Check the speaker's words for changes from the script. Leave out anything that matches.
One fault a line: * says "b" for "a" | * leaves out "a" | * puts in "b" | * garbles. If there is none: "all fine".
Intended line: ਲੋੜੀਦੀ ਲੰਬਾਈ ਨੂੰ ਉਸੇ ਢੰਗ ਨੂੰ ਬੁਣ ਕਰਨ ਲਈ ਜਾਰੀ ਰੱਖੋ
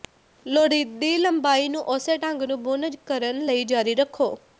all fine